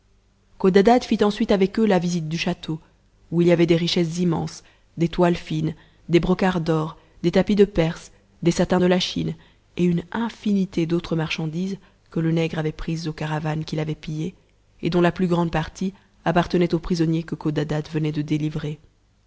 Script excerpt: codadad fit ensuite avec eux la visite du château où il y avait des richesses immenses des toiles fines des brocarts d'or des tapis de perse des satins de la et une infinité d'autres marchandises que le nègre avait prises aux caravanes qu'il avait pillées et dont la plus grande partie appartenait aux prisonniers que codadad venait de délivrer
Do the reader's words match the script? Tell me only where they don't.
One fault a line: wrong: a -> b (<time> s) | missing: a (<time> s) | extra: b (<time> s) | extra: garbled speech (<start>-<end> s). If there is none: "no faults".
extra: chine (9.0 s)